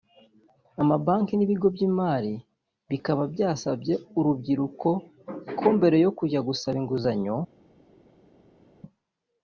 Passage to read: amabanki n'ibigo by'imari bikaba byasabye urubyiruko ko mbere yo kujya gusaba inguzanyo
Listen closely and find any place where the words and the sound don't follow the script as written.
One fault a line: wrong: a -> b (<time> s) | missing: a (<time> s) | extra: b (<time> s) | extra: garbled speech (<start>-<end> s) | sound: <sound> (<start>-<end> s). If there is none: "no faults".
no faults